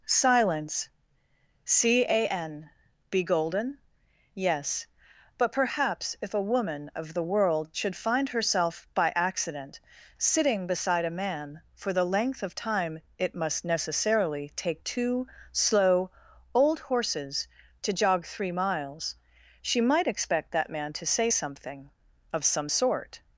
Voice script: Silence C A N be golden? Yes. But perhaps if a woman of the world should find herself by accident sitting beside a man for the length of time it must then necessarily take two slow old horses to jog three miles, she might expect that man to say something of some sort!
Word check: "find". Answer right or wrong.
right